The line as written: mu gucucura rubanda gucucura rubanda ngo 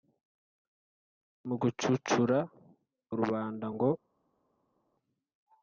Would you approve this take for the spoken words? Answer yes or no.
no